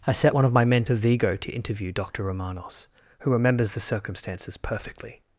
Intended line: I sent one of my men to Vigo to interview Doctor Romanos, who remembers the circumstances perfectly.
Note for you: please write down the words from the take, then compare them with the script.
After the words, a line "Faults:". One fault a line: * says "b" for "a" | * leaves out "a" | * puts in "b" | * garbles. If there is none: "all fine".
I set one of my men to Vigo to interview Doctor Romanos, who remembers the circumstances perfectly.
Faults:
* says "set" for "sent"